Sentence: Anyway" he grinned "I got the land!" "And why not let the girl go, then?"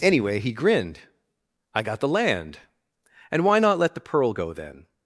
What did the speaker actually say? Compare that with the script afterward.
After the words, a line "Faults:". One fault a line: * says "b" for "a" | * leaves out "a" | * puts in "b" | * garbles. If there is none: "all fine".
Anyway" he grinned "I got the land!" "And why not let the pearl go, then?"
Faults:
* says "pearl" for "girl"